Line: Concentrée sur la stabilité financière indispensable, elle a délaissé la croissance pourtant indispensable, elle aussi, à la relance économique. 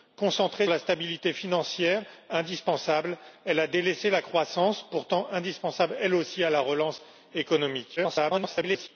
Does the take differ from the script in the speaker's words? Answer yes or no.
yes